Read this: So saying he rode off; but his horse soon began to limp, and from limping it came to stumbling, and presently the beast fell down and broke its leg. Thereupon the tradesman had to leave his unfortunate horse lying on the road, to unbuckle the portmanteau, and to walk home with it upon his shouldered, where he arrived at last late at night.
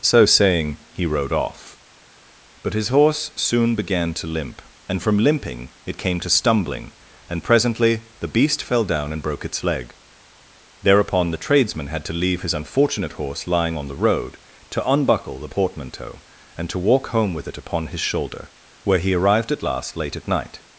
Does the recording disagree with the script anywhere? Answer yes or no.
yes